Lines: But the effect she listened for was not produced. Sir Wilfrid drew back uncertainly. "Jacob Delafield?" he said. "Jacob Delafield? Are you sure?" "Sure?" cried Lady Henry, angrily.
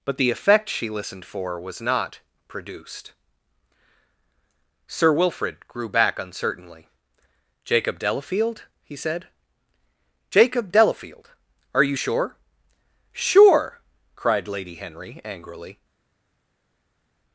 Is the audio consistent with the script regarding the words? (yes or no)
no